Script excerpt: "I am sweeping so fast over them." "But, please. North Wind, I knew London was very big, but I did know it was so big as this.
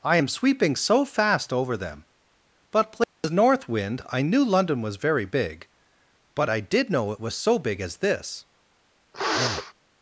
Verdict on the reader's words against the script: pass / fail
pass